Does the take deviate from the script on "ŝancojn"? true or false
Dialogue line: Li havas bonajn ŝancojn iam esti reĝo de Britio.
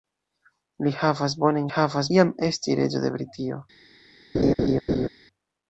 true